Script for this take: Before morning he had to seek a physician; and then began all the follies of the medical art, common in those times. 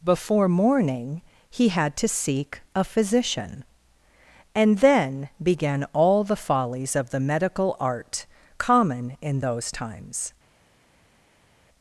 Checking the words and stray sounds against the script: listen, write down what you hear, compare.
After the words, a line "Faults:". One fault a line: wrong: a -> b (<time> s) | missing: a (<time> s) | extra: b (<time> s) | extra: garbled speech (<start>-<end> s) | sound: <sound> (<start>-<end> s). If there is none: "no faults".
Before morning he had to seek a physician; and then began all the follies of the medical art, common in those times.
Faults:
no faults